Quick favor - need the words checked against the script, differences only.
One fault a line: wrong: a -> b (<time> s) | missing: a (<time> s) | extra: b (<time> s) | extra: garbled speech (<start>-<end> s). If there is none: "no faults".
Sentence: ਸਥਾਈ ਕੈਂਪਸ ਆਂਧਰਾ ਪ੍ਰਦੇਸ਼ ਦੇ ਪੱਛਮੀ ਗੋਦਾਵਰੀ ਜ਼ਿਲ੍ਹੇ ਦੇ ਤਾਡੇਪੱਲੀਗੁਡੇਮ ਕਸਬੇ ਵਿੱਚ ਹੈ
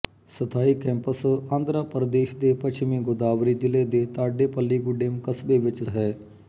no faults